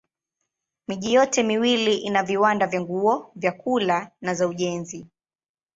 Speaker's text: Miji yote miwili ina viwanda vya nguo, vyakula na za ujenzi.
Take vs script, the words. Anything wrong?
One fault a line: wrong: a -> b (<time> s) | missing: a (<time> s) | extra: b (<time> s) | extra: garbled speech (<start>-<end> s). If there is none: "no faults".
no faults